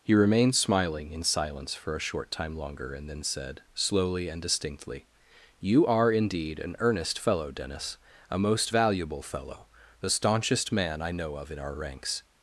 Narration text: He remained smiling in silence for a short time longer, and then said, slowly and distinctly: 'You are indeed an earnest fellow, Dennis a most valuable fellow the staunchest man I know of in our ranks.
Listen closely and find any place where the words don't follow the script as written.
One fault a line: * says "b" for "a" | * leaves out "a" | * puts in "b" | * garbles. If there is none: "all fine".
all fine